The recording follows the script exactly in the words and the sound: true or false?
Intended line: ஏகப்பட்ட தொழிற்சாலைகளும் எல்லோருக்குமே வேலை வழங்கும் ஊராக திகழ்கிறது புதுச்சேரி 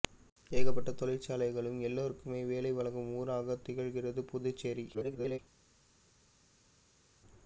false